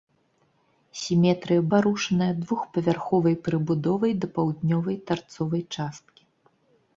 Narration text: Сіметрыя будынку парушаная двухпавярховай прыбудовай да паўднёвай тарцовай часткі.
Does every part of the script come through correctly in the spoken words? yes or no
no